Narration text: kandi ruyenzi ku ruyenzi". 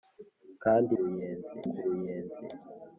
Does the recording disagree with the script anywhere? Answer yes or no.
no